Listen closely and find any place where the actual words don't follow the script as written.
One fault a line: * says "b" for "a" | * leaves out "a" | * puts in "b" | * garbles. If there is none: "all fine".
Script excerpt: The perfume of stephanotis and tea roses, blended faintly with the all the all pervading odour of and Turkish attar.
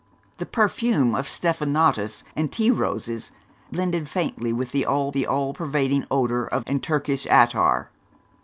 all fine